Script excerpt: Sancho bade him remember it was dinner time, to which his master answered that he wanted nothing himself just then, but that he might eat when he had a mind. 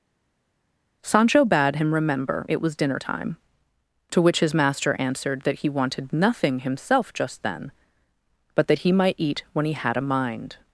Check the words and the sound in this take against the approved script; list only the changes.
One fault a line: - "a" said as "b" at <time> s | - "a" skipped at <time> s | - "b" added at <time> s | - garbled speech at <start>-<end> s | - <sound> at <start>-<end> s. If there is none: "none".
none